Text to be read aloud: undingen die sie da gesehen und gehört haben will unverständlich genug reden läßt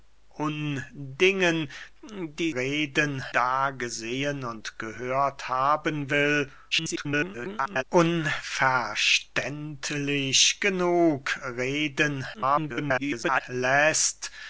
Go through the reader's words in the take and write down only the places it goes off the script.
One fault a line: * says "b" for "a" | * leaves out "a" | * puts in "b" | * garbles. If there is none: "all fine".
* says "reden" for "sie"
* garbles
* garbles